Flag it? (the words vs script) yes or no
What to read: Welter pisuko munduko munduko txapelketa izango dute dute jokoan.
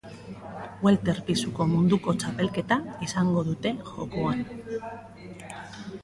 yes